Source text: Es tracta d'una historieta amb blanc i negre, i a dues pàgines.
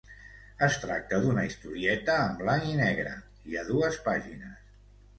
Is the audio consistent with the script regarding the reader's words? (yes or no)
no